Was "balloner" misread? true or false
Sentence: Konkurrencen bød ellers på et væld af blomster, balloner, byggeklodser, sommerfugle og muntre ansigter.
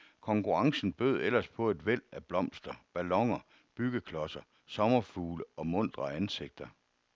false